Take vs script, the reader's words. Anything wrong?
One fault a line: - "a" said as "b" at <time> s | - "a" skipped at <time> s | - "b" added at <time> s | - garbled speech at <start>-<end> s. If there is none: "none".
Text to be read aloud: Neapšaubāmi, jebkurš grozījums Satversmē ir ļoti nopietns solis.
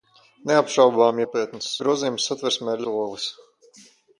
- "jebkurš" said as "nopietns" at 1.2 s
- "ļoti nopietns" skipped at 2.9 s